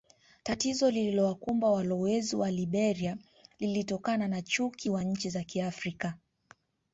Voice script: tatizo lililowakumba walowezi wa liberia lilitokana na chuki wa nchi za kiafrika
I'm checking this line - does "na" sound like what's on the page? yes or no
yes